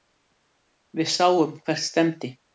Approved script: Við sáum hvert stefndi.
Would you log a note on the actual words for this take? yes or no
no